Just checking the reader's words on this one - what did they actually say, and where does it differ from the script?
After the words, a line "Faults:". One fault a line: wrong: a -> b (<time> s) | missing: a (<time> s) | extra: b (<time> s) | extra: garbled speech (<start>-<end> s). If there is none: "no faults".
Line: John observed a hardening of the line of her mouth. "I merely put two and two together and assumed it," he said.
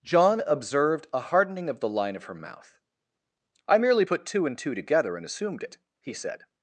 John observed a hardening of the line of her mouth. "I merely put two and two together and assumed it," he said.
Faults:
no faults